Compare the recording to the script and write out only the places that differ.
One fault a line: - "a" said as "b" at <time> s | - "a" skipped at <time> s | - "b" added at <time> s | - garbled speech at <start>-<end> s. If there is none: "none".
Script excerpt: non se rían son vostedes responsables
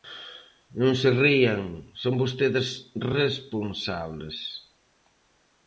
none